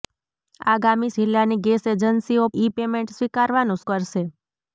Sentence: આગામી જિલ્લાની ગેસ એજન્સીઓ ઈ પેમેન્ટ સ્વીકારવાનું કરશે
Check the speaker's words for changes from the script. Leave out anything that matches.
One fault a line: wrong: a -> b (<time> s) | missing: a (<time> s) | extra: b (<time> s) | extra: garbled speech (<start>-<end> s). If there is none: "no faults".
no faults